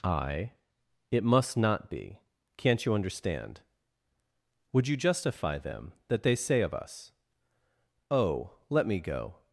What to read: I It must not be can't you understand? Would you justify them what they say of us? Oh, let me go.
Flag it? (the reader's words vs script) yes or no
yes